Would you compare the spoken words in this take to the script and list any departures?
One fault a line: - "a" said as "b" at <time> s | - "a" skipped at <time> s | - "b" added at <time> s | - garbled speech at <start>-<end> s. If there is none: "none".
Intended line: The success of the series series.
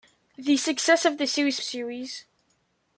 none